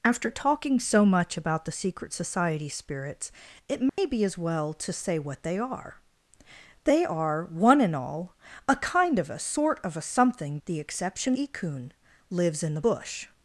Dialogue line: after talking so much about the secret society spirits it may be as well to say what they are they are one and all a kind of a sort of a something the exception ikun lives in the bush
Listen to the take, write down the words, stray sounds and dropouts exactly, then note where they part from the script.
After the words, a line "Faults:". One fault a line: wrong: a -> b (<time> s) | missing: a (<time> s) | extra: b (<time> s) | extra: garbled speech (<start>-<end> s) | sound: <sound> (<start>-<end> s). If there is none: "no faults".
after talking so much about the secret society spirits it may be as well to say what they are they are one and all a kind of a sort of a something the exception ikun lives in the bush
Faults:
sound: dropout (3.9-4.0 s)